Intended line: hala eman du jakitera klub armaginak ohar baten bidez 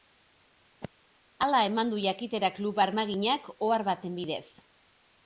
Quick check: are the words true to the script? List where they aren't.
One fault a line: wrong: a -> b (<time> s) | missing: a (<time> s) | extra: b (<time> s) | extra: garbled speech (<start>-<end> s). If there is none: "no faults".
no faults